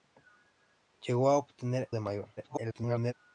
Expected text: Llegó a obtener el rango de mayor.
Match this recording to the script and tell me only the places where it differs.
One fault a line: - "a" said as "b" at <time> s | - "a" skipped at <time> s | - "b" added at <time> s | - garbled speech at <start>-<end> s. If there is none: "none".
- "el rango" skipped at 1.9 s
- garbled speech at 2.4-3.1 s